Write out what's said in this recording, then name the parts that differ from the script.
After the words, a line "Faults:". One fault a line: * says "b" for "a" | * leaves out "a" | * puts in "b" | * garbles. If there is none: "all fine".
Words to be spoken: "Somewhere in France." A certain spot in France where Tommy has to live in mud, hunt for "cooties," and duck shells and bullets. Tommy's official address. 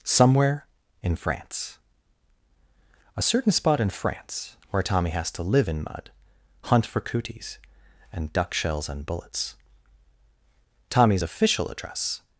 "Somewhere in France." A certain spot in France where Tommy has to live in mud, hunt for "cooties," and duck shells and bullets. Tommy's official address.
Faults:
all fine